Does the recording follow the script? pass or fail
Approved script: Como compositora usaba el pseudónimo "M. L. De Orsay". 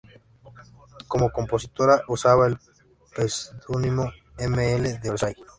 pass